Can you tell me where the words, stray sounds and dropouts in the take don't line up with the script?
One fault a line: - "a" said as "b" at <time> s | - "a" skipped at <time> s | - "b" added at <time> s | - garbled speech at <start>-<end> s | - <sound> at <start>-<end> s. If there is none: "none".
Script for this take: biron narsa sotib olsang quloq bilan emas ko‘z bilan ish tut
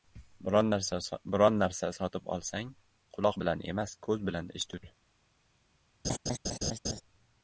- laugh at 6.0-7.0 s